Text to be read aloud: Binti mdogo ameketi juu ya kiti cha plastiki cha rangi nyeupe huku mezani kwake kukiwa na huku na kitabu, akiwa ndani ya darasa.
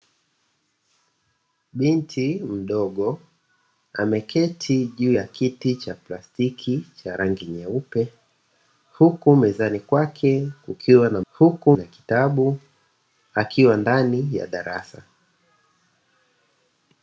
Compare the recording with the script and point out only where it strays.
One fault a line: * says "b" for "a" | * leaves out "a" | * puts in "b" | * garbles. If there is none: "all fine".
all fine